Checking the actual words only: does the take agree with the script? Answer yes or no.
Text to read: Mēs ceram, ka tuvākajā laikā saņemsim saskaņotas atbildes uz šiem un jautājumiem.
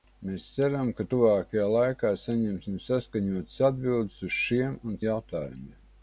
yes